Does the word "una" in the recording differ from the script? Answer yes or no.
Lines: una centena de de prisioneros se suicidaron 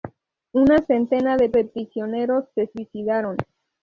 no